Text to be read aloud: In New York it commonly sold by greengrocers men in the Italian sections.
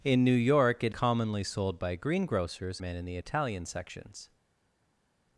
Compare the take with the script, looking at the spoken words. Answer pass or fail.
pass